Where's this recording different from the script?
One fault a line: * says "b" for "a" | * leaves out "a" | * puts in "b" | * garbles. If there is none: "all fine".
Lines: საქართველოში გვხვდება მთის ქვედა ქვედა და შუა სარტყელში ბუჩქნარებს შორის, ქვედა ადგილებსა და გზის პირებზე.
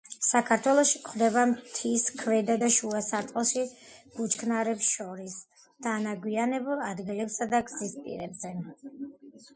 * leaves out "ქვედა"
* says "დანაგვიანებულ" for "ქვედა"